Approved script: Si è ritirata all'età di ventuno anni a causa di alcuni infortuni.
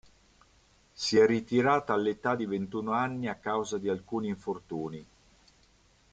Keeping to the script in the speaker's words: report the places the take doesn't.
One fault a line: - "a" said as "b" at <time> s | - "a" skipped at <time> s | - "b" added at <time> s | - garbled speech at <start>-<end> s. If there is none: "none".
none